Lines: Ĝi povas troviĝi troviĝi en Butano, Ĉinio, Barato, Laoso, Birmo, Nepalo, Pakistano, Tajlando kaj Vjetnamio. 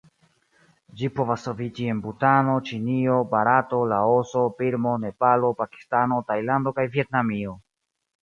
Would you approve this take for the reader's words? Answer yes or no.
no